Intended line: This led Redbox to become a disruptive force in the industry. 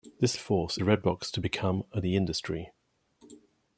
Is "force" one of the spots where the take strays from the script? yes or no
yes